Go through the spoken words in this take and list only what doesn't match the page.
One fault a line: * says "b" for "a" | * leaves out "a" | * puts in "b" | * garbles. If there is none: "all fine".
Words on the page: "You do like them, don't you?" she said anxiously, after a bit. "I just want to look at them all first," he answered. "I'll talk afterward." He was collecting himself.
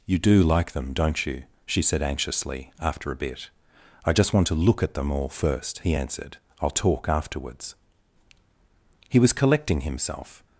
* says "afterwards" for "afterward"